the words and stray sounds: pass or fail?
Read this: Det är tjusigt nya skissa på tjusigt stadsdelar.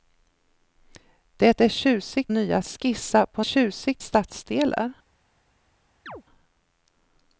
fail